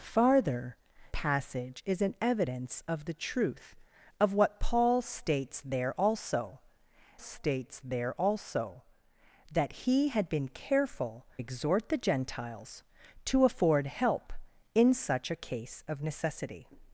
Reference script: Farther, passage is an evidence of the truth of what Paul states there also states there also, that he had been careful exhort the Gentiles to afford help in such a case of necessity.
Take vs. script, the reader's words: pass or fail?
pass